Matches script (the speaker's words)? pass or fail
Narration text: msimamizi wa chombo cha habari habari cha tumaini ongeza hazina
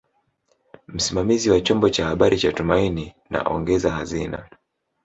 fail